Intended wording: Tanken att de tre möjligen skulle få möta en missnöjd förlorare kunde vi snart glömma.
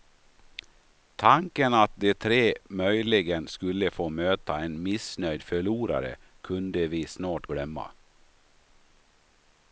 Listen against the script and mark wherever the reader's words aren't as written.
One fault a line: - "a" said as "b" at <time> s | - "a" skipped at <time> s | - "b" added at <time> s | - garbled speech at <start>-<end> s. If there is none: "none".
none